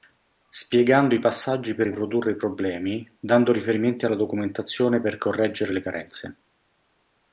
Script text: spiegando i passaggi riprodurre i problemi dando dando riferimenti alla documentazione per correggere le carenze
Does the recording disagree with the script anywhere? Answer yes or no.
yes